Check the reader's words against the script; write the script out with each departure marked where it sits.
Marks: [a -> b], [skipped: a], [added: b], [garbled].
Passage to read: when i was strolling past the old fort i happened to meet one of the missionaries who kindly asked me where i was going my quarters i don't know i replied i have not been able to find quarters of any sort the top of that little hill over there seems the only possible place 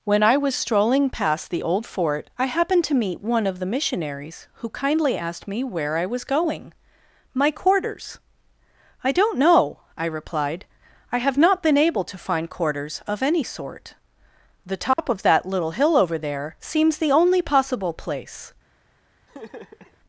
when i was strolling past the old fort i happened to meet one of the missionaries who kindly asked me where i was going my quarters i don't know i replied i have not been able to find quarters of any sort the top of that little hill over there seems the only possible place